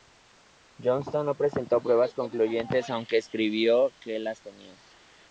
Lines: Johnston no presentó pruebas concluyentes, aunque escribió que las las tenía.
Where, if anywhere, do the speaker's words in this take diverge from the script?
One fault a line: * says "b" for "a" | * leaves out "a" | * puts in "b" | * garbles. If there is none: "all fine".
* leaves out "las"